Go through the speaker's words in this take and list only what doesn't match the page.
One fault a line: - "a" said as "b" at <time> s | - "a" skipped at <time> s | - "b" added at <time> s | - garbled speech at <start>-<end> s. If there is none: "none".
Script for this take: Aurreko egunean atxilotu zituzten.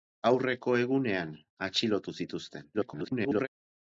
- garbled speech at 2.7-3.5 s